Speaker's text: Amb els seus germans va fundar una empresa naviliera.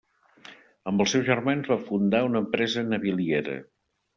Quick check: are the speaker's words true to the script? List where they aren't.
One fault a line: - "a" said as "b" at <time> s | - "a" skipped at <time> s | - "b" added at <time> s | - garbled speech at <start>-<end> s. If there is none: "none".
none